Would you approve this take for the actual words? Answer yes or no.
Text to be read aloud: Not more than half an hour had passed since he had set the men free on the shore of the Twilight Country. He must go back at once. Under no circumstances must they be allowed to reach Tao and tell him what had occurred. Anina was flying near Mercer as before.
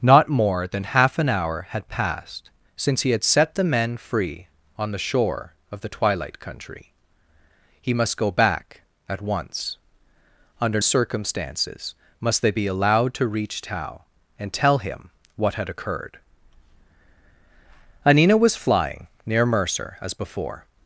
no